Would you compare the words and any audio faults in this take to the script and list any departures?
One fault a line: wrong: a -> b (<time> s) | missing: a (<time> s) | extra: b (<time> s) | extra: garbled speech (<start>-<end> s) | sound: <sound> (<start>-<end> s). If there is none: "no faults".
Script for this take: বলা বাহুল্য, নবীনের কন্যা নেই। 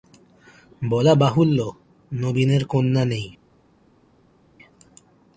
no faults